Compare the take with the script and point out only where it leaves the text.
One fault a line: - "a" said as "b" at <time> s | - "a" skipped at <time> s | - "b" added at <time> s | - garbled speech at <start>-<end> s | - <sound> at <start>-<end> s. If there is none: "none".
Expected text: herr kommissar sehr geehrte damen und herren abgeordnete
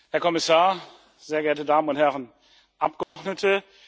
- dropout at 3.0-3.2 s